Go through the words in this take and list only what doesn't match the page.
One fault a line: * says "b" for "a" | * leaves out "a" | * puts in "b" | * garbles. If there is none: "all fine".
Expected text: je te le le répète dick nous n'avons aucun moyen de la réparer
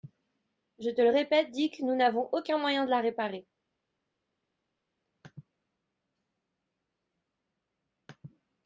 * leaves out "le"